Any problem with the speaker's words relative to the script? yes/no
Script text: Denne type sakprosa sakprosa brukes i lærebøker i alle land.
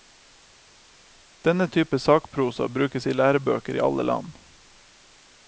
yes